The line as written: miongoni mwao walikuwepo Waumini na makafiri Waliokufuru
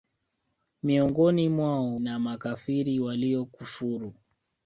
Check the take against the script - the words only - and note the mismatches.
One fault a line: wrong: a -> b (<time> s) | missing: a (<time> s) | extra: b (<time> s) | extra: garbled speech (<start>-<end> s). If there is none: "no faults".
missing: walikuwepo Waumini (2.0 s)